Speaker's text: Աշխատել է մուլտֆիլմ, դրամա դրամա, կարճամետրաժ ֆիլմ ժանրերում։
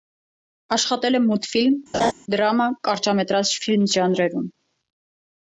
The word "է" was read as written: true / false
true